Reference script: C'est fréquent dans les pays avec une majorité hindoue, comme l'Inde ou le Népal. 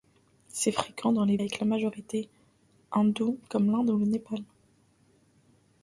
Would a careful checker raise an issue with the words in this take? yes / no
yes